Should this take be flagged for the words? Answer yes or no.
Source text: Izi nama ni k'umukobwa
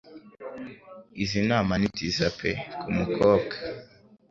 yes